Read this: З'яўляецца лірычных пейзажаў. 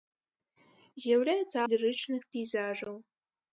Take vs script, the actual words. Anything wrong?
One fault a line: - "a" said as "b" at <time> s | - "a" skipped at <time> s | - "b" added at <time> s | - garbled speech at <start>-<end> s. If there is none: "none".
none